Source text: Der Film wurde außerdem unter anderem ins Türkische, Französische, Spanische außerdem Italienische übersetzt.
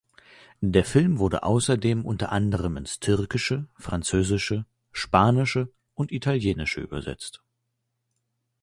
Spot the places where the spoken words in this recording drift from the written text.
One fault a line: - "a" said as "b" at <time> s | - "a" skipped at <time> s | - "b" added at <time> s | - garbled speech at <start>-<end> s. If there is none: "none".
- "außerdem" said as "und" at 5.9 s